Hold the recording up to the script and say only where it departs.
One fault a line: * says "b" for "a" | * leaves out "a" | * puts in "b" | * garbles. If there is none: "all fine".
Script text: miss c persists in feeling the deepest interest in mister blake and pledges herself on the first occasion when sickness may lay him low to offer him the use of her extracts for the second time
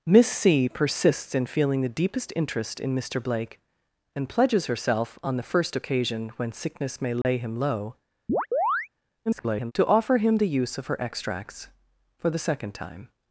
* garbles